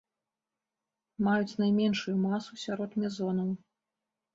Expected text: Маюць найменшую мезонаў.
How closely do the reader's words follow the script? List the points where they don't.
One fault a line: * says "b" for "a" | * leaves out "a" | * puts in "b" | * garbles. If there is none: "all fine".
* puts in "масу сярод"